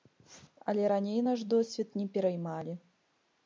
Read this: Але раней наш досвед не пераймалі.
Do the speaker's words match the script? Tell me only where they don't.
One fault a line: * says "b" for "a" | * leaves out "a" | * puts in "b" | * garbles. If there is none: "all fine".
all fine